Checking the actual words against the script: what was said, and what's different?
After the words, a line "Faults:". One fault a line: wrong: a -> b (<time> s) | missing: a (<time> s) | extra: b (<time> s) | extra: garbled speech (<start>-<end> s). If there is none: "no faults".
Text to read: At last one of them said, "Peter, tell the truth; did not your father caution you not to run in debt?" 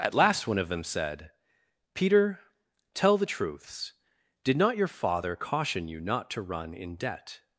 At last one of them said, "Peter, tell the truths; did not your father caution you not to run in debt?"
Faults:
wrong: truth -> truths (3.3 s)